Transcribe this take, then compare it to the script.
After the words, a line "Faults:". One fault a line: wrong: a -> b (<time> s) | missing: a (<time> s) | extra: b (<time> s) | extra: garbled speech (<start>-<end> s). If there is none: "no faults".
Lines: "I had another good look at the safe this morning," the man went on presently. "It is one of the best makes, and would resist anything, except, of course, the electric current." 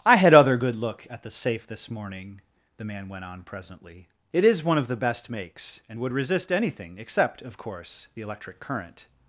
"I had other good look at the safe this morning," the man went on presently. "It is one of the best makes, and would resist anything, except, of course, the electric current."
Faults:
wrong: another -> other (0.3 s)